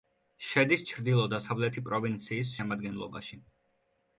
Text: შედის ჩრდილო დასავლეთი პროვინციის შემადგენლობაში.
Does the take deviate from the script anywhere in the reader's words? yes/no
no